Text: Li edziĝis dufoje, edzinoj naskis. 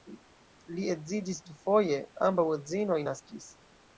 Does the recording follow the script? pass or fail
fail